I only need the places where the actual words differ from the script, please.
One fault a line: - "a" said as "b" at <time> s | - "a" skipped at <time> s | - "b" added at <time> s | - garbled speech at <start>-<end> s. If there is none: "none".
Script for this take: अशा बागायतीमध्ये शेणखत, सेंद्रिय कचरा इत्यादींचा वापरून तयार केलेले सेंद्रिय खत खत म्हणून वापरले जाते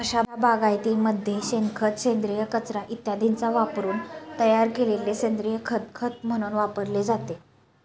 none